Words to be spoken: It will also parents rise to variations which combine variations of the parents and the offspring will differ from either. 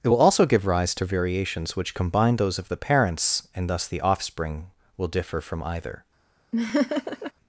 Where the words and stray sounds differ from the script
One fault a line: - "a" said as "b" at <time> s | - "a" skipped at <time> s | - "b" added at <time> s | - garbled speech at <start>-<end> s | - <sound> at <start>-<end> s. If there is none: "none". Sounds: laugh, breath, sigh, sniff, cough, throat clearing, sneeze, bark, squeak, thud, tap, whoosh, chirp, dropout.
- "parents" said as "give" at 0.4 s
- "variations" said as "those" at 2.4 s
- "thus" added at 3.7 s
- laugh at 6.5-7.3 s